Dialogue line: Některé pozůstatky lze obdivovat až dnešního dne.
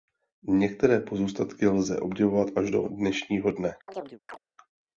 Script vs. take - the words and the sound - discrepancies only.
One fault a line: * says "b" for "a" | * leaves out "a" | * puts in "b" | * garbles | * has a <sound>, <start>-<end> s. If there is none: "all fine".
* puts in "do"
* has a chirp, 3.9-4.4 s